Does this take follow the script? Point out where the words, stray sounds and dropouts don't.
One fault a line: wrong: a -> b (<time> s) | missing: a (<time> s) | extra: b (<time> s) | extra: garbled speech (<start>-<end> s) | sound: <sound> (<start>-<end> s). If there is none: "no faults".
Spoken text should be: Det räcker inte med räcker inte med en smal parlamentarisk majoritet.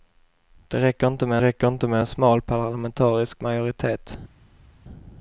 no faults